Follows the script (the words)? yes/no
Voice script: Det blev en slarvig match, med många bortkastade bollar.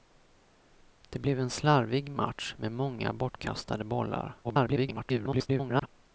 no